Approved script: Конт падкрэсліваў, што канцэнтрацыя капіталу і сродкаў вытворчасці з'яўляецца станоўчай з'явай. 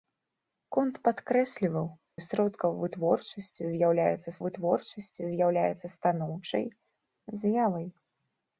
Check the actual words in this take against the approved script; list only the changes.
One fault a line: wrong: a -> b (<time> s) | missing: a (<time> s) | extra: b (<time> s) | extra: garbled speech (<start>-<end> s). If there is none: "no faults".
wrong: што канцэнтрацыя капіталу і сродкаў -> і сродкаў вытворчасці з'яўляецца (2.2 s)